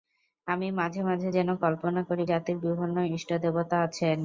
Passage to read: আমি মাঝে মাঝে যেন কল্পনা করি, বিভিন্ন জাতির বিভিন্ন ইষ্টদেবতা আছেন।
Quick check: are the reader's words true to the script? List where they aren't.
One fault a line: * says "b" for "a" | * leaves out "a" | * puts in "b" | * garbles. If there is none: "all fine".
* leaves out "বিভিন্ন"